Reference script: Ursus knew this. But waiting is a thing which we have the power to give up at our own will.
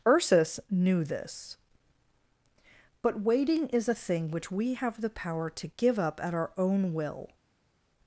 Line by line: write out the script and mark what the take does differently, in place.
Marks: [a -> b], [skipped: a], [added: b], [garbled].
Ursus knew this. But waiting is a thing which we have the power to give up at our own will.